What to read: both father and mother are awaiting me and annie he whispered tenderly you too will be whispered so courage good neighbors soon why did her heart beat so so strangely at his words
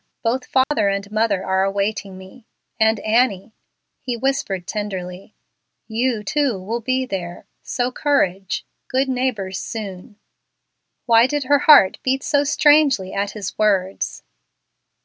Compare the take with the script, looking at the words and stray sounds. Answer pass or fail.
fail